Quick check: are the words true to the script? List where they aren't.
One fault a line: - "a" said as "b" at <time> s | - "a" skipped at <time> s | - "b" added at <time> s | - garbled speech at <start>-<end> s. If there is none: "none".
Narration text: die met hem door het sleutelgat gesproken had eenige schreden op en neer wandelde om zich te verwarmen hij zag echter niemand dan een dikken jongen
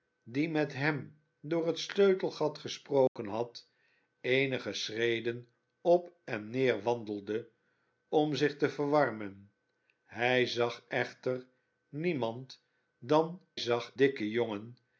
- "een" said as "zag" at 13.6 s